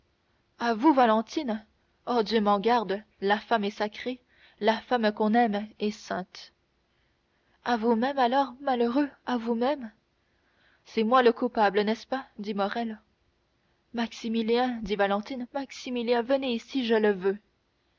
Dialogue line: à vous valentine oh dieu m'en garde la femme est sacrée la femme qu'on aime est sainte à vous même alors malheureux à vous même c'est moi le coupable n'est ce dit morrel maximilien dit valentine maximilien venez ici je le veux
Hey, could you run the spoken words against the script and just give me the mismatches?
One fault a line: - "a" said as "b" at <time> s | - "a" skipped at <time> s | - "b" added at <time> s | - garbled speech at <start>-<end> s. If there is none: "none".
- "pas" added at 12.1 s